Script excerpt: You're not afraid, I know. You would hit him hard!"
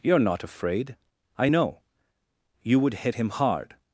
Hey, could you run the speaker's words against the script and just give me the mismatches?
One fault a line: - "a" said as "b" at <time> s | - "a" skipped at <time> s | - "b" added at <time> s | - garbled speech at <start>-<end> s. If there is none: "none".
none